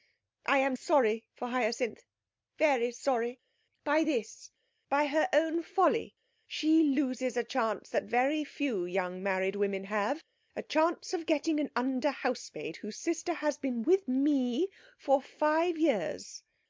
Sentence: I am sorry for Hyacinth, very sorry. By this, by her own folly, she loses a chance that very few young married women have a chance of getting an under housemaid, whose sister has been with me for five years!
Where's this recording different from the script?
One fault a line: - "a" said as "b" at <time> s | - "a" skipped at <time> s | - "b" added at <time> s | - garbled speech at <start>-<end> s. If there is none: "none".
none